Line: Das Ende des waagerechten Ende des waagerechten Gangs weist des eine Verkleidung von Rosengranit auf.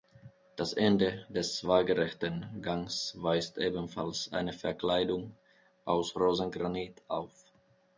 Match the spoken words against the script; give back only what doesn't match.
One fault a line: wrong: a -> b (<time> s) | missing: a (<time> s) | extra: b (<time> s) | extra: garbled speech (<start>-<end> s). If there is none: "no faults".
missing: Ende des waagerechten (2.6 s)
wrong: des -> ebenfalls (3.6 s)
wrong: von -> aus (5.8 s)